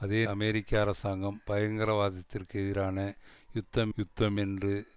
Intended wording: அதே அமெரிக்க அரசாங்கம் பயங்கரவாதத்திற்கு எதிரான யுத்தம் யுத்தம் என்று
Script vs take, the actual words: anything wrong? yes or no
no